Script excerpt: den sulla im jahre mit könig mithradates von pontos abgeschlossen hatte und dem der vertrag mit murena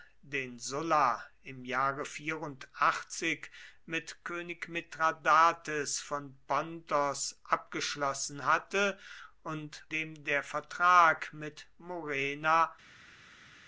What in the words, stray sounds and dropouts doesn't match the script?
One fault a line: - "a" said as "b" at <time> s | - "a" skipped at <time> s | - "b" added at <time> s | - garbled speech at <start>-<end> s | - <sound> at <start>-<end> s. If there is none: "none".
none